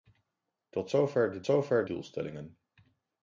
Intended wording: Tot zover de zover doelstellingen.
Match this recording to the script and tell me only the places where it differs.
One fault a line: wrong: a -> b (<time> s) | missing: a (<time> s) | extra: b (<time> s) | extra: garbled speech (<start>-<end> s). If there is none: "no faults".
no faults